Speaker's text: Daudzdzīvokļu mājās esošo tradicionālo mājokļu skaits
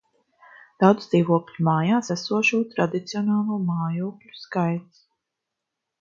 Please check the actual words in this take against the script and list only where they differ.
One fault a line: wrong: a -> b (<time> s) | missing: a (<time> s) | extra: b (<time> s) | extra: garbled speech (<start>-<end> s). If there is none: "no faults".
no faults